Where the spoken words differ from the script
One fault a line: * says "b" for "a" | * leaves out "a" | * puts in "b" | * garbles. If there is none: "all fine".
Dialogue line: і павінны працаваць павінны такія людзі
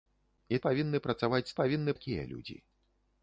all fine